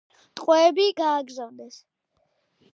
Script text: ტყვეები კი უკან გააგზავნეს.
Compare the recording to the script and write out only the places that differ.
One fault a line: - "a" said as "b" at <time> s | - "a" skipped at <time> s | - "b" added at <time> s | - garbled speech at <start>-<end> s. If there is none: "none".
- "კი უკან" skipped at 0.8 s